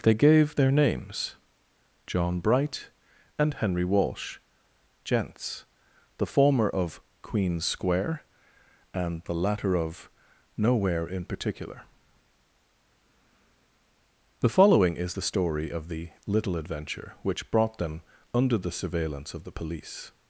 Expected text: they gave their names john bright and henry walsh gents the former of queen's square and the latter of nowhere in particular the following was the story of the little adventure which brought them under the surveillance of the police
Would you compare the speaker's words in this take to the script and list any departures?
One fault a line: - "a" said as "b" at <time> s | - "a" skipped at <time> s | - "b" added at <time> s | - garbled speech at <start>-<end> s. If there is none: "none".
- "was" said as "is" at 15.0 s